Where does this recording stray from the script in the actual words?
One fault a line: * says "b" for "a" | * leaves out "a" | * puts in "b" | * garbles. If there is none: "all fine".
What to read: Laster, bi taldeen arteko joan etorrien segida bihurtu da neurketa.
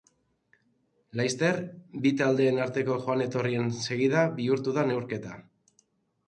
all fine